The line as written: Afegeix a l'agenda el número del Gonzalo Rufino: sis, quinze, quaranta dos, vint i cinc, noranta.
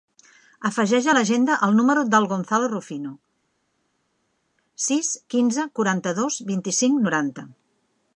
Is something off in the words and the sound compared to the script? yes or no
no